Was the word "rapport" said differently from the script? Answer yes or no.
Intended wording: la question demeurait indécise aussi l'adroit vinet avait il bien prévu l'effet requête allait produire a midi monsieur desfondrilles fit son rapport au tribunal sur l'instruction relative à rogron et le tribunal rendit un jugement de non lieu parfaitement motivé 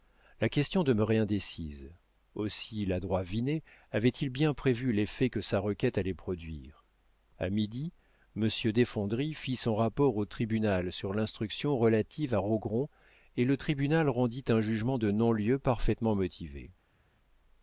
no